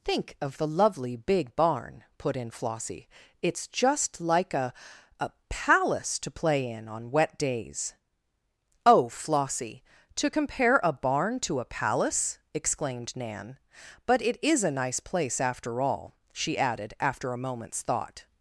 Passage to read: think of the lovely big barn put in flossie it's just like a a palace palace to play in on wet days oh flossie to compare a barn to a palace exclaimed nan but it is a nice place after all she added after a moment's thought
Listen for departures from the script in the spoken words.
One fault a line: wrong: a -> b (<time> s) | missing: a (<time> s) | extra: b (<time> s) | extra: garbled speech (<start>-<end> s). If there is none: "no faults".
missing: palace (6.2 s)